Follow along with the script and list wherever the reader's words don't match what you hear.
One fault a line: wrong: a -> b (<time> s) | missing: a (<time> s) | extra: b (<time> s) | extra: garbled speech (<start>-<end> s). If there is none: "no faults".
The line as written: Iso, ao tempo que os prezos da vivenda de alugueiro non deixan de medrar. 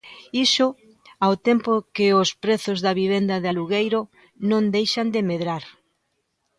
no faults